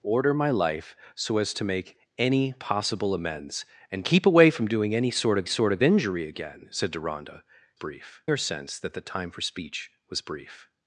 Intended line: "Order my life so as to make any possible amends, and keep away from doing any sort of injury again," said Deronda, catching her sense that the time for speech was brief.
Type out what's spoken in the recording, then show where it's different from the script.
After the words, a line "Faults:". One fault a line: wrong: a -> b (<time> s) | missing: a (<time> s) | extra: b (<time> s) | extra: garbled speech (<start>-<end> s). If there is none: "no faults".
"Order my life so as to make any possible amends, and keep away from doing any sort of sort of injury again," said Deronda, brief her sense that the time for speech was brief.
Faults:
extra: sort of (5.5 s)
wrong: catching -> brief (7.7 s)